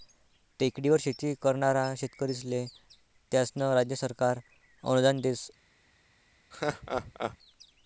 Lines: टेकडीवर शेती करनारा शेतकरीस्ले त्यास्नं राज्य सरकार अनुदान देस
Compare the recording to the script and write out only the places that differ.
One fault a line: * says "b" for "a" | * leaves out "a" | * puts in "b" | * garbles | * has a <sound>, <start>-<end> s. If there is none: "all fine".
* has a laugh, 6.5-7.4 s